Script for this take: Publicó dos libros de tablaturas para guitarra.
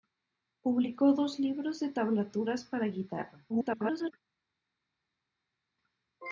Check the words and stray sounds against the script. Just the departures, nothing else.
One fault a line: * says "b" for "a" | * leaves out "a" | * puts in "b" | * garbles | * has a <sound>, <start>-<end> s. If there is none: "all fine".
* garbles